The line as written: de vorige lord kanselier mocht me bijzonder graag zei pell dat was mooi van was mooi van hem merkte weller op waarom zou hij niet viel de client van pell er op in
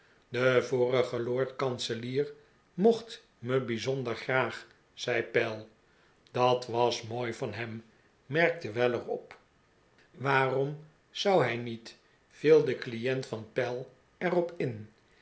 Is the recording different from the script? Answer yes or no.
yes